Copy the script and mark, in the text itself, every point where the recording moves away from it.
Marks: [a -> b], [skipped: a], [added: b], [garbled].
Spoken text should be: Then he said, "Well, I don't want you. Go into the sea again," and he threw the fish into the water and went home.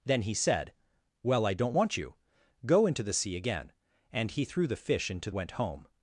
Then he said, "Well, I don't want you. Go into the sea again," and he threw the fish into [skipped: the water and] went home.